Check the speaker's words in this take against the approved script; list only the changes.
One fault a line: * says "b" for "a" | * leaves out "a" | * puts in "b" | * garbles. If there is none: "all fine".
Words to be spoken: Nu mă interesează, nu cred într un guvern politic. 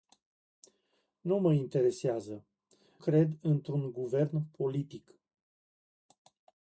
* leaves out "nu"